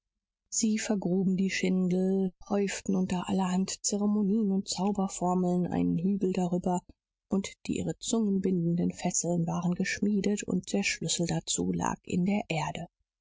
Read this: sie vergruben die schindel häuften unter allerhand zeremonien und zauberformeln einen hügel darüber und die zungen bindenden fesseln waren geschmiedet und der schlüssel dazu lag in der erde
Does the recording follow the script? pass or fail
fail